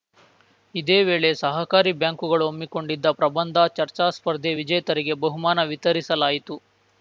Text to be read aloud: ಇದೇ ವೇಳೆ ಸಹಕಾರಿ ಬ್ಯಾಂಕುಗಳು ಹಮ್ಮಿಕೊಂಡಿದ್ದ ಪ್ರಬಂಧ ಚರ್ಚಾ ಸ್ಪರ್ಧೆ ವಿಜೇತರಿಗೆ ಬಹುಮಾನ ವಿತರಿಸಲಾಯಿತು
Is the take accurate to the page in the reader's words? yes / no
yes